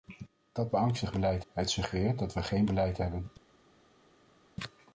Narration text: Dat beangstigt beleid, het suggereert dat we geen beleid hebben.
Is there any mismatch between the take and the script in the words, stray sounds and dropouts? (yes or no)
no